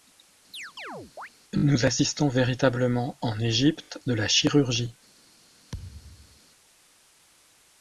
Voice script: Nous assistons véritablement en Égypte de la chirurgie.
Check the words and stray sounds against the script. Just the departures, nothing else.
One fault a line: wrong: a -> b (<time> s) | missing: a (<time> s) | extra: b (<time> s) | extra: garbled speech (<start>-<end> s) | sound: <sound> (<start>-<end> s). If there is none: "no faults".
sound: chirp (0.5-1.3 s)
sound: thud (5.7-6.4 s)